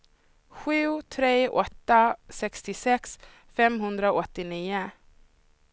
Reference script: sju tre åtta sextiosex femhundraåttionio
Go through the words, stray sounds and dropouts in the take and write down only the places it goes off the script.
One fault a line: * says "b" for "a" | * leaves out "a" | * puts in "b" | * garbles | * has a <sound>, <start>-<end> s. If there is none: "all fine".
all fine